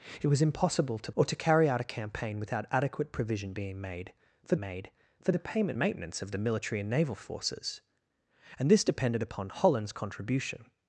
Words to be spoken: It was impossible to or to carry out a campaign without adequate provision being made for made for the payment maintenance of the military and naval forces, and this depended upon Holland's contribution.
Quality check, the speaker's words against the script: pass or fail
pass